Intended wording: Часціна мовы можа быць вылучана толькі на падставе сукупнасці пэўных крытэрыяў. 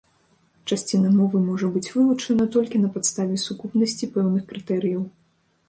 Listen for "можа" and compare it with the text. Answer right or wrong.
right